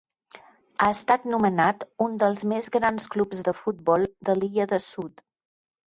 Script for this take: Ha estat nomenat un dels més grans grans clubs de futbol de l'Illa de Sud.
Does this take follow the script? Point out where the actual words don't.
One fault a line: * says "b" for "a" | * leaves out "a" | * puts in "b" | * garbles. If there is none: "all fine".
* leaves out "grans"